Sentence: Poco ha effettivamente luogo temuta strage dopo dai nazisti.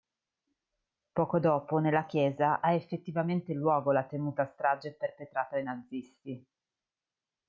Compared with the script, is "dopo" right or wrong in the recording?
wrong